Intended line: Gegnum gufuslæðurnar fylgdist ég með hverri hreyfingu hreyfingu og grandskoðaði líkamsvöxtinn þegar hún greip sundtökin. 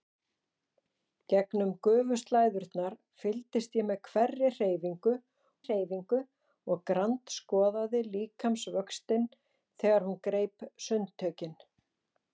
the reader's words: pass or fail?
pass